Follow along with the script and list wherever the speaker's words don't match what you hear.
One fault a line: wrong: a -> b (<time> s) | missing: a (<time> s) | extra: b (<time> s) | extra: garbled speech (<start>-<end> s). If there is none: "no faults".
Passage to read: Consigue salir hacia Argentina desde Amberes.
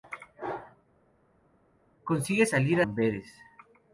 missing: hacia Argentina desde (2.8 s)